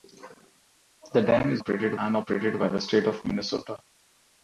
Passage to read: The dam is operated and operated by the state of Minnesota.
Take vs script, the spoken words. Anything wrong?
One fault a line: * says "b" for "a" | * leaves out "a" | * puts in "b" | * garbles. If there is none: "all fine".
all fine